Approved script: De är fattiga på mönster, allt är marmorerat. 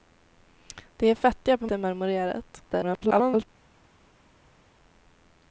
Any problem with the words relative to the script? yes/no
yes